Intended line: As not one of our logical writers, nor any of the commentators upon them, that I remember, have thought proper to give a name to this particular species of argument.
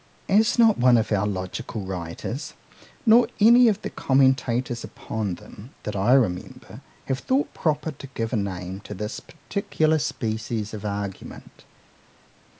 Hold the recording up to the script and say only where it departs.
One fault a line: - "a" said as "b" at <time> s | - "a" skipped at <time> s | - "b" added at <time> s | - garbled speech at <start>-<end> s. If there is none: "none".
none